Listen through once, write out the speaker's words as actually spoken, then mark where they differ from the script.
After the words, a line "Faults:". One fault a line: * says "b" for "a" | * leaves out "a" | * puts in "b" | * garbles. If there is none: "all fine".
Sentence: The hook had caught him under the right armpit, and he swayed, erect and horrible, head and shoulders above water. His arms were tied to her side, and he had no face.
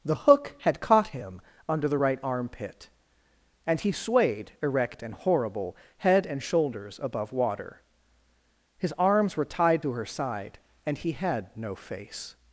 The hook had caught him under the right armpit, and he swayed, erect and horrible, head and shoulders above water. His arms were tied to her side, and he had no face.
Faults:
all fine